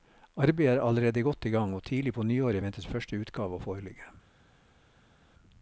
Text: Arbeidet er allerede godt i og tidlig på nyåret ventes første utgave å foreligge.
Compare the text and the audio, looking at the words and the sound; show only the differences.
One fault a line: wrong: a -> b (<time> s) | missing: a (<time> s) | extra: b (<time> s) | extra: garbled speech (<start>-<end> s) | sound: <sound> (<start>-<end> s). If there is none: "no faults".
extra: gang (1.5 s)